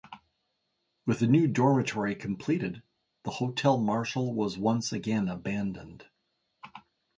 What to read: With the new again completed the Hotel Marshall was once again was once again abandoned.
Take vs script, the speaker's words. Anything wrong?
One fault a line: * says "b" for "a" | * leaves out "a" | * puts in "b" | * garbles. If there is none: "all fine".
* says "dormitory" for "again"
* leaves out "was once again"